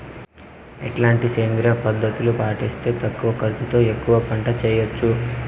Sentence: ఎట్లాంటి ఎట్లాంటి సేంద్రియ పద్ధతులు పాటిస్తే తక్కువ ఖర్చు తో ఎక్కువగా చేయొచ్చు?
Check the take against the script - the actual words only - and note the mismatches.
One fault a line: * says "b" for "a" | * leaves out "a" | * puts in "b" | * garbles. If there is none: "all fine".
* leaves out "ఎట్లాంటి"
* puts in "పంట"